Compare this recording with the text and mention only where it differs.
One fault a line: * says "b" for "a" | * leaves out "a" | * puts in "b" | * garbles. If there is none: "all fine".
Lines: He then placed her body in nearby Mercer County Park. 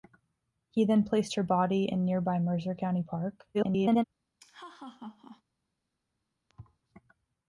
* garbles